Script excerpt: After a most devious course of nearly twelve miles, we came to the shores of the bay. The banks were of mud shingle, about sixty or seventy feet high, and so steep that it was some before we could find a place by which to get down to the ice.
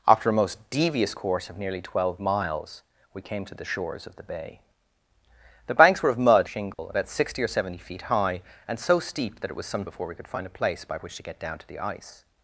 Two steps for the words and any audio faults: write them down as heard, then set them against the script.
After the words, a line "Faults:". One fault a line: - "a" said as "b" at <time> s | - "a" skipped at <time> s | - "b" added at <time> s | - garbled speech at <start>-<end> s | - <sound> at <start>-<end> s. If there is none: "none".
After a most devious course of nearly twelve miles, we came to the shores of the bay. The banks were of mud shingle, about sixty or seventy feet high, and so steep that it was some before we could find a place by which to get down to the ice.
Faults:
- dropout at 6.7-6.8 s